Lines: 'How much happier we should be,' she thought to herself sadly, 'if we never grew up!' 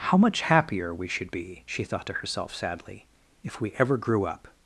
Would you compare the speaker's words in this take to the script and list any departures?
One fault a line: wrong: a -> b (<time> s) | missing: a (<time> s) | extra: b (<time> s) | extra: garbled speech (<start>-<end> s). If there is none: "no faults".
wrong: never -> ever (3.8 s)